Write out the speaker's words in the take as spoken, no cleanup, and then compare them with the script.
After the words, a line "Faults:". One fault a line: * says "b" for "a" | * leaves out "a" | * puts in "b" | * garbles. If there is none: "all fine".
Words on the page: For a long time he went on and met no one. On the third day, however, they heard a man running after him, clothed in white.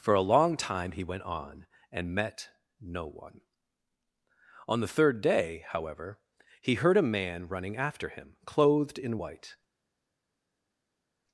For a long time he went on and met no one. On the third day, however, he heard a man running after him, clothed in white.
Faults:
* says "he" for "they"